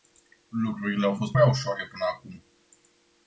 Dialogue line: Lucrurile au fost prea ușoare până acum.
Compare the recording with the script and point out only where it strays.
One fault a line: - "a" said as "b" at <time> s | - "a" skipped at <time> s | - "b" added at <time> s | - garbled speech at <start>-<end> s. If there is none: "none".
none